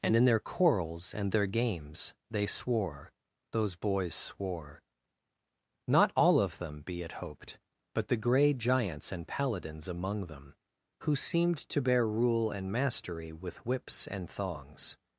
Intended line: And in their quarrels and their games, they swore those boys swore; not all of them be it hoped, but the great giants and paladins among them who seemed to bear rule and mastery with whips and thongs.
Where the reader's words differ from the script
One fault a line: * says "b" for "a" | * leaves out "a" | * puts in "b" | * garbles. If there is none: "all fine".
* says "grey" for "great"